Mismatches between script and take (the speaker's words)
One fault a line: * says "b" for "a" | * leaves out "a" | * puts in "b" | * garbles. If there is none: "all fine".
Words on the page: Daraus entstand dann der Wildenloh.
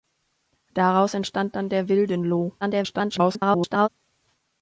* garbles